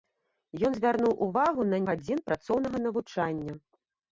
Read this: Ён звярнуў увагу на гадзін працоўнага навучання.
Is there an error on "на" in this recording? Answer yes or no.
no